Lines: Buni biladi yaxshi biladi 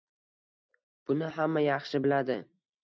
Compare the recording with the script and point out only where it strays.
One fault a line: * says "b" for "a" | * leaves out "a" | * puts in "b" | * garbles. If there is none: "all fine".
* says "hamma" for "biladi"